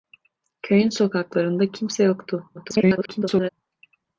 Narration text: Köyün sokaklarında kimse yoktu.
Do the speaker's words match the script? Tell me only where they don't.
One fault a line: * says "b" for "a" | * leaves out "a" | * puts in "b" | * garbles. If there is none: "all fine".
* garbles